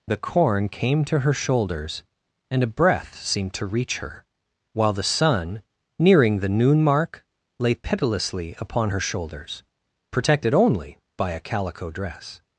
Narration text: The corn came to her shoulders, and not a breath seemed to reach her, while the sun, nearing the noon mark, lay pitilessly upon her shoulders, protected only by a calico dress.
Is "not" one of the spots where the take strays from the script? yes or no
yes